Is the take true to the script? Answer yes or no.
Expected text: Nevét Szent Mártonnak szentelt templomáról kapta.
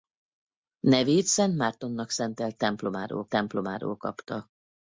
no